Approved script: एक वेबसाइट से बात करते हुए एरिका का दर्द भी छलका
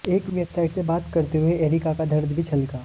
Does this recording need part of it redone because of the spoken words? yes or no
no